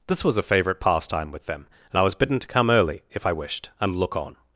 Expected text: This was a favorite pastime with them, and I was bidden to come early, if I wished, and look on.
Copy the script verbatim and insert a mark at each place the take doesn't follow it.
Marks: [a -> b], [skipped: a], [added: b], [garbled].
This was a favorite pastime with them, and I was bidden to come early, if I wished, and look on.